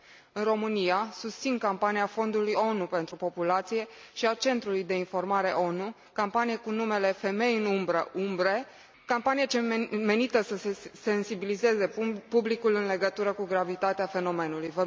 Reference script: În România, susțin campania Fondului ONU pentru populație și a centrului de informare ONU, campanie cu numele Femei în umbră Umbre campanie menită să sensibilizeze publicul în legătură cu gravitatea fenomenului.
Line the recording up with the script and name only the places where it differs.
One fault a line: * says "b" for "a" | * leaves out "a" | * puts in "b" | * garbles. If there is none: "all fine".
all fine